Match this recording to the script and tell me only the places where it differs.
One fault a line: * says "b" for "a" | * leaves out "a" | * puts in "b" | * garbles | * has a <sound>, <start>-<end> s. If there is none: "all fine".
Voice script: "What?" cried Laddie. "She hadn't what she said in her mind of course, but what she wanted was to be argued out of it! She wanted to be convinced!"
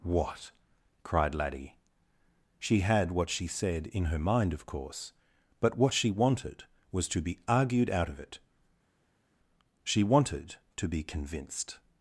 * says "had" for "hadn't"